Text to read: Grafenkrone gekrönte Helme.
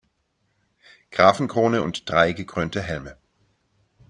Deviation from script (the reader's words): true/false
true